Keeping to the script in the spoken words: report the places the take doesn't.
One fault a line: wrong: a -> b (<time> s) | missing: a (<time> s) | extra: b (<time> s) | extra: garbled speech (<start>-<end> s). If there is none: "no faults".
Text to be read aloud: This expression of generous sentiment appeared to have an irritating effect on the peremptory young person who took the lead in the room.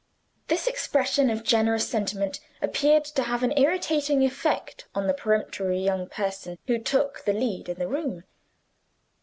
no faults